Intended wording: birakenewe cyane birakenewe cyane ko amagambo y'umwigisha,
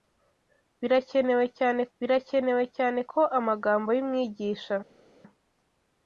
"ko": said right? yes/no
yes